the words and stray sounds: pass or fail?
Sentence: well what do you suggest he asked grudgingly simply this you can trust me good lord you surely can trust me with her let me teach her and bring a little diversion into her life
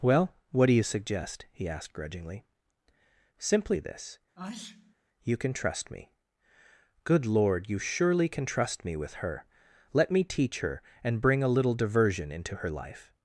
fail